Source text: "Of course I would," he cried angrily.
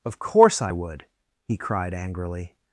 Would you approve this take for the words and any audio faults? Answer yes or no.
yes